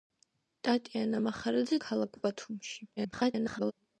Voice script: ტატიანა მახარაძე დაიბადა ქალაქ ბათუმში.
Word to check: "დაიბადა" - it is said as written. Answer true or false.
false